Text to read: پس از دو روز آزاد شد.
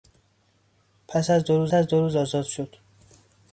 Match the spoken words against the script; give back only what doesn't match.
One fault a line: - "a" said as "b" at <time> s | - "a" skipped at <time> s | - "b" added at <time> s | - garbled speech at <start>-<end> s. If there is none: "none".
- "از دو روز" added at 1.7 s